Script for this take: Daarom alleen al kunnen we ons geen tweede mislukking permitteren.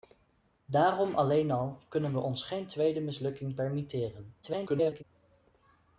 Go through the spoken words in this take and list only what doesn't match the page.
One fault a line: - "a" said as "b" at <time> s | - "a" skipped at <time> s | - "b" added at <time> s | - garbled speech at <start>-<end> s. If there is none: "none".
- garbled speech at 4.4-5.0 s